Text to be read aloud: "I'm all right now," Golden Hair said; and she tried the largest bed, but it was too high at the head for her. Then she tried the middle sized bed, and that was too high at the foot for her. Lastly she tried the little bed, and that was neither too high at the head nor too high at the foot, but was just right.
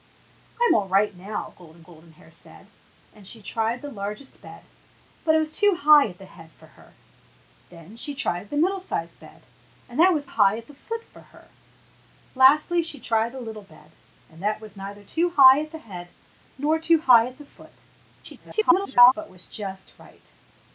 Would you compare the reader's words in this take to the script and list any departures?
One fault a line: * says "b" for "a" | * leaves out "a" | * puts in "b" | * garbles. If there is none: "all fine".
* puts in "Golden"
* leaves out "too"
* garbles